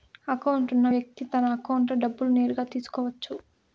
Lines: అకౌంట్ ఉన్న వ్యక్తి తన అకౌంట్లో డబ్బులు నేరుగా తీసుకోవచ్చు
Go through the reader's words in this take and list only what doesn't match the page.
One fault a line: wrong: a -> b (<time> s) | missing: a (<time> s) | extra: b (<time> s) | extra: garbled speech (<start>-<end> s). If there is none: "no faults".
no faults